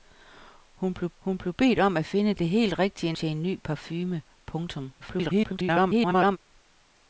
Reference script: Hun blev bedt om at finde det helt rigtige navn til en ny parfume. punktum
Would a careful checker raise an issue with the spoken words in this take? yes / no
yes